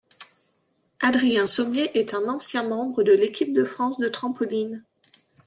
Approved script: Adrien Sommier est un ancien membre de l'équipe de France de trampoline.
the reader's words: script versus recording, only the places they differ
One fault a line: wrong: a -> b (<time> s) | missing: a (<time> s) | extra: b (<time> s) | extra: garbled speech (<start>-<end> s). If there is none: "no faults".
no faults